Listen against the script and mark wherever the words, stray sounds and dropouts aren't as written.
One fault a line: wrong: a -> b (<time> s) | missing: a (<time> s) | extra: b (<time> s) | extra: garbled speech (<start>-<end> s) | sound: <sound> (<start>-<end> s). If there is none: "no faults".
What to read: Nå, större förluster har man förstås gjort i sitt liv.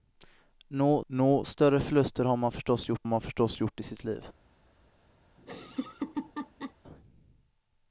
extra: nå (1.1 s)
extra: man förstås gjort (3.0 s)
sound: laugh (5.4-6.7 s)